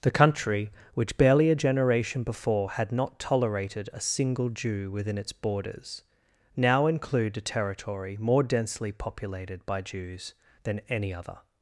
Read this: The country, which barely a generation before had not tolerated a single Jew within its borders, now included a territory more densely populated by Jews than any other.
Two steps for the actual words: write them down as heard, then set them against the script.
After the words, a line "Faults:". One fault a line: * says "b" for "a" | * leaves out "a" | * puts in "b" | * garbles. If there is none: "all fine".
The country, which barely a generation before had not tolerated a single Jew within its borders, now include a territory more densely populated by Jews than any other.
Faults:
* says "include" for "included"